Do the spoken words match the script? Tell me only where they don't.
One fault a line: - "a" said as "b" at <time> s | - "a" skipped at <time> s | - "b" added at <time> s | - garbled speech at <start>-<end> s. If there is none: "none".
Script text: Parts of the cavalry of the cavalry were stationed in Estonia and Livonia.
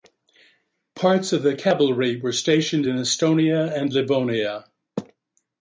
- "of the cavalry" skipped at 2.2 s